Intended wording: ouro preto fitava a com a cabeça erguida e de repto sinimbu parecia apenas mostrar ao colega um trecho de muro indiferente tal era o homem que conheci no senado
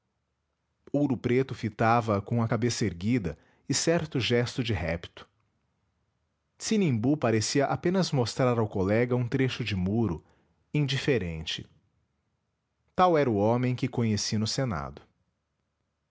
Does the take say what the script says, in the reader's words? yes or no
no